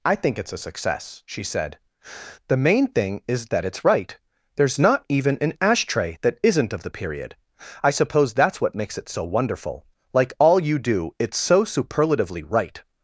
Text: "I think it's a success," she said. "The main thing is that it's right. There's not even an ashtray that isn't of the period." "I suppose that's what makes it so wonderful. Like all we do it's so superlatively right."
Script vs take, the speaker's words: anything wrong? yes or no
yes